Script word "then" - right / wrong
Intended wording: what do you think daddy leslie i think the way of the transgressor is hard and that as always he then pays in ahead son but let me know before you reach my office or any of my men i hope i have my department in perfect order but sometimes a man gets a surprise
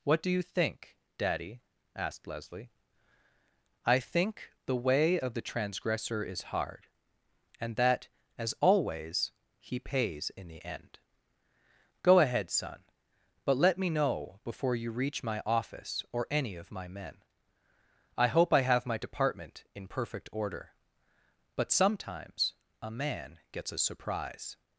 wrong